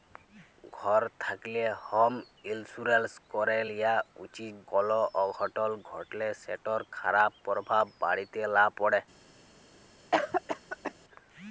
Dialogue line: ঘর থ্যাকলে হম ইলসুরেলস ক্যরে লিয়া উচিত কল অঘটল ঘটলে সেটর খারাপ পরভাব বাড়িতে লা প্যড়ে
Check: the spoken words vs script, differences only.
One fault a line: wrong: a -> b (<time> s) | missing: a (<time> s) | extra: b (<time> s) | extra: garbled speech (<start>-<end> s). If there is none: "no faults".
no faults